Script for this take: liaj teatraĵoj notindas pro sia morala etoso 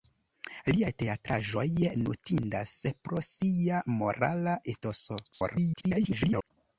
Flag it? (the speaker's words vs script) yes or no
yes